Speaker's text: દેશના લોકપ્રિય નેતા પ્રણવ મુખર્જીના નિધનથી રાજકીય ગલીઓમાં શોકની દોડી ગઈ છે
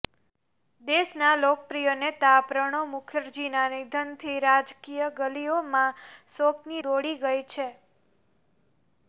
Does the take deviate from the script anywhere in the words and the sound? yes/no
no